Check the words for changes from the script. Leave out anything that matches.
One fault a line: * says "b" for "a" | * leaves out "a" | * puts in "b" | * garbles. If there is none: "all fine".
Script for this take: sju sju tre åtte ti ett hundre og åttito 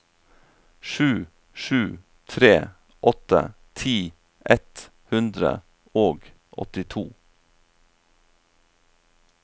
all fine